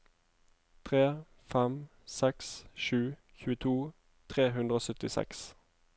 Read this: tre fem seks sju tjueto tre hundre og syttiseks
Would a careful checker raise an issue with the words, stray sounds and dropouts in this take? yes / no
no